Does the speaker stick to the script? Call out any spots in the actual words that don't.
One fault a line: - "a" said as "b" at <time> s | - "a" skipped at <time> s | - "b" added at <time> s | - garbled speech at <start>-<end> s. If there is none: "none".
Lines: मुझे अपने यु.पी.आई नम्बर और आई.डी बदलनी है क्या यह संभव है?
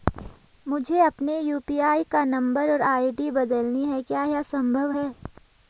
- "का" added at 2.0 s